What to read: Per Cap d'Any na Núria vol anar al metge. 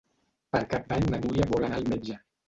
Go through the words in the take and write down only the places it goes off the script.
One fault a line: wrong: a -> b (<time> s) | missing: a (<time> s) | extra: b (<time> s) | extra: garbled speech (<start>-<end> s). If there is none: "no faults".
no faults